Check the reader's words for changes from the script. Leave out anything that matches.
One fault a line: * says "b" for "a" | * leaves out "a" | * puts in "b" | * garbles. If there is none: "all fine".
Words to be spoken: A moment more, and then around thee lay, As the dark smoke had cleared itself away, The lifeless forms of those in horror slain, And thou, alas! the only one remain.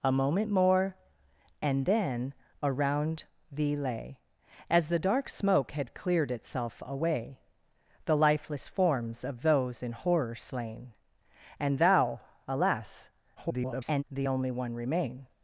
* garbles